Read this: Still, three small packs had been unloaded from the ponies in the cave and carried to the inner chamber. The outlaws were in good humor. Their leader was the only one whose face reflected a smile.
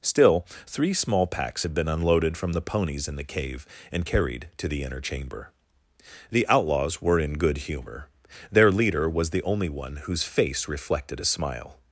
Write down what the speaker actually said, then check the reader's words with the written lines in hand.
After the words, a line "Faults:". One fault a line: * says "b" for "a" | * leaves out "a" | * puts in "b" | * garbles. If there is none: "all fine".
Still, three small packs had been unloaded from the ponies in the cave and carried to the inner chamber. The outlaws were in good humor. Their leader was the only one whose face reflected a smile.
Faults:
all fine